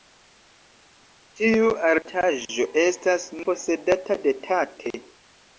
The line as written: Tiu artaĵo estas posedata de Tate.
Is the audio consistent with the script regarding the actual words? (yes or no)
yes